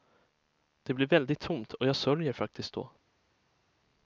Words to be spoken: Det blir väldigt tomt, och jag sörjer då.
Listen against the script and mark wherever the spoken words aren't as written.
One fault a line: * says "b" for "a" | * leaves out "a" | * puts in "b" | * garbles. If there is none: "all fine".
* puts in "faktiskt"